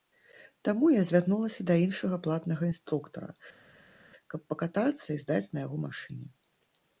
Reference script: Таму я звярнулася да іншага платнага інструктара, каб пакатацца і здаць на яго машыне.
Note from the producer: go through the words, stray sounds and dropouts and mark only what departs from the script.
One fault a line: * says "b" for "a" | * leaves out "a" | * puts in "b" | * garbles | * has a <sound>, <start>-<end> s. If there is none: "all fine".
all fine